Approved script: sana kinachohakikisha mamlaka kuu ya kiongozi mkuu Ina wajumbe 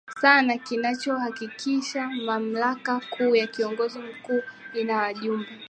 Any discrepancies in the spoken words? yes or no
no